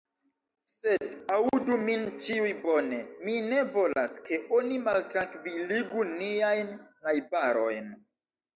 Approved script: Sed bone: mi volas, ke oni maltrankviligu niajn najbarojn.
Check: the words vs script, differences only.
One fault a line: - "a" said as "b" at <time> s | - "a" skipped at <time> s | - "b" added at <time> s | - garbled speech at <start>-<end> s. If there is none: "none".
- "aŭdu min ĉiuj" added at 1.4 s
- "ne" added at 3.5 s